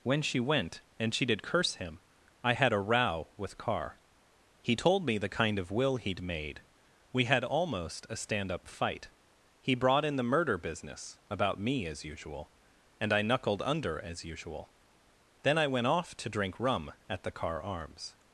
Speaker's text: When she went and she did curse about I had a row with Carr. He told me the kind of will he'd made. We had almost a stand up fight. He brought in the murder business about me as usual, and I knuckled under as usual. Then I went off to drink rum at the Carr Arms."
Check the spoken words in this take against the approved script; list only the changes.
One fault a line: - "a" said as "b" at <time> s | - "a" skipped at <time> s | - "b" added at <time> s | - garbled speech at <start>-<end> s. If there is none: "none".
- "about" said as "him" at 1.8 s